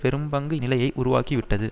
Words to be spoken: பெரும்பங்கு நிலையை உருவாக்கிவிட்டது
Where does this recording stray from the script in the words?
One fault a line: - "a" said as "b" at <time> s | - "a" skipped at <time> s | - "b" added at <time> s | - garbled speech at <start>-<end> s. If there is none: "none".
none